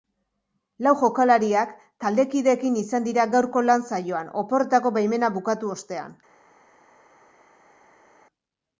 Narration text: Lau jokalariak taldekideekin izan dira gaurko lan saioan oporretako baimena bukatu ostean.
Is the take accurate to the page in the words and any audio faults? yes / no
yes